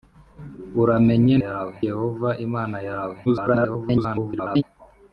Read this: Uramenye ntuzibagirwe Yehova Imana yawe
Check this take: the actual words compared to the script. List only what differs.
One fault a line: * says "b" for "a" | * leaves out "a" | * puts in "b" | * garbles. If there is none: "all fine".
* says "yawe" for "ntuzibagirwe"
* garbles